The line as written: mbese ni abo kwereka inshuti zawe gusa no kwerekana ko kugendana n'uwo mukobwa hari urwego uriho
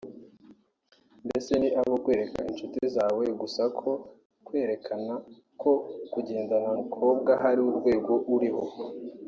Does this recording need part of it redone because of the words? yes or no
yes